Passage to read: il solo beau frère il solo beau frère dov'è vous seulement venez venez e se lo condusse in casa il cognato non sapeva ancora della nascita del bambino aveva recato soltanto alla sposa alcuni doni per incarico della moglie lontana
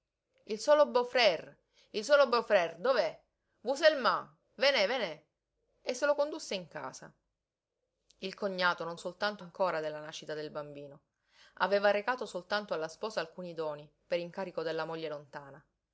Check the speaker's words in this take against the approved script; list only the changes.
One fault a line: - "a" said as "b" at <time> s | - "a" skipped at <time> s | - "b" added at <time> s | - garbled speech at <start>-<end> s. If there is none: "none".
- "sapeva" said as "soltanto" at 9.0 s